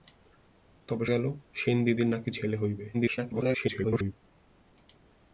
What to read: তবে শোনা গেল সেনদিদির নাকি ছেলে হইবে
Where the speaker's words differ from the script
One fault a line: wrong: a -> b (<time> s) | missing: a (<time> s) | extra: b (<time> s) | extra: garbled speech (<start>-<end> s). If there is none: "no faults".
missing: শোনা (1.1 s)
extra: garbled speech (2.9-4.1 s)